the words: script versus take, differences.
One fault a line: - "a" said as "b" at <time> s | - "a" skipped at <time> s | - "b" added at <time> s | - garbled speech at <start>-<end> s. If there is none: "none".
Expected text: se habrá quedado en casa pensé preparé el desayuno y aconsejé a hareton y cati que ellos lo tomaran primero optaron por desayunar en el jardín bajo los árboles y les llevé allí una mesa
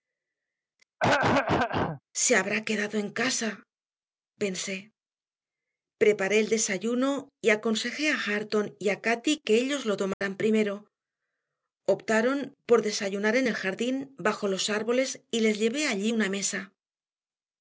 - "a" added at 8.9 s